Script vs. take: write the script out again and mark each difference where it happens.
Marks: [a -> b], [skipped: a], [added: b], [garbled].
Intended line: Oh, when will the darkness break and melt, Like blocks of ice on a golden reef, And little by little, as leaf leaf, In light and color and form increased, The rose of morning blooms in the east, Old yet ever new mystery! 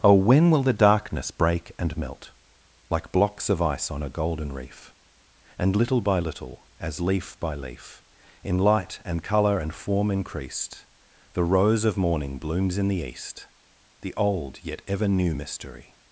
Oh, when will the darkness break and melt, Like blocks of ice on a golden reef, And little by little, as leaf [added: by] leaf, In light and color and form increased, The rose of morning blooms in the east, [added: The] Old yet ever new mystery!